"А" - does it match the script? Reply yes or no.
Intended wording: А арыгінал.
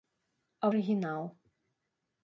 yes